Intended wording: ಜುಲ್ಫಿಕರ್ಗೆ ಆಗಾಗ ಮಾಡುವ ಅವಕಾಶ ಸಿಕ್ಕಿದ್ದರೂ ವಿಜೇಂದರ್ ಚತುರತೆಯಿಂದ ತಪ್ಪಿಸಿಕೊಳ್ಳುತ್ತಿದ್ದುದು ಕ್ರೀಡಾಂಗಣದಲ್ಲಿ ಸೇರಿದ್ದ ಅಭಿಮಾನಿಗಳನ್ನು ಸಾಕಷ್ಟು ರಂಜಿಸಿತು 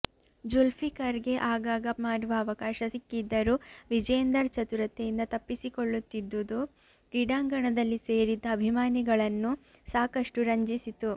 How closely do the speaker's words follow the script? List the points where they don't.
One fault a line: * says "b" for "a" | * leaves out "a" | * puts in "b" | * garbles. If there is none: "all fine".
all fine